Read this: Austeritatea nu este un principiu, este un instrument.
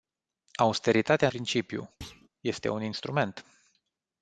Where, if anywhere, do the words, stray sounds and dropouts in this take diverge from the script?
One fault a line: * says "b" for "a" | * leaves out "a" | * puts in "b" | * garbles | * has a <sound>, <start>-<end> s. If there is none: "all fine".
* leaves out "nu este un"
* has a thud, 2.0-2.3 s